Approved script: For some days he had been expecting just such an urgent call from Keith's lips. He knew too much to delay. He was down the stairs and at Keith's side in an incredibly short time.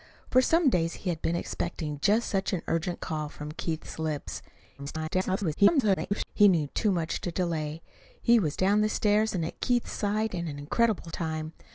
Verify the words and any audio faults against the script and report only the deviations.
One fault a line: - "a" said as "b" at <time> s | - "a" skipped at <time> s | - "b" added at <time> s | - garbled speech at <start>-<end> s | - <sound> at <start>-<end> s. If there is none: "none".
- garbled speech at 4.8-6.3 s
- "short" skipped at 11.1 s